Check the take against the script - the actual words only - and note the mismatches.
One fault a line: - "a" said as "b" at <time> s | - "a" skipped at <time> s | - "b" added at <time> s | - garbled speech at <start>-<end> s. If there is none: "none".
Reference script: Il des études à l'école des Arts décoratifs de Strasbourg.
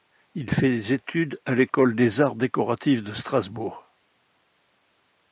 - "fait" added at 0.5 s